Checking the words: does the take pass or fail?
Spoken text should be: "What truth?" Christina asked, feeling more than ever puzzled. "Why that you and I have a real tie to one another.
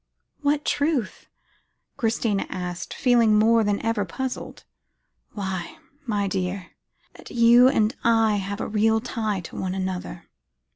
fail